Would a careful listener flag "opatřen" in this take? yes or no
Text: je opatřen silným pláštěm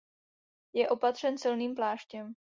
no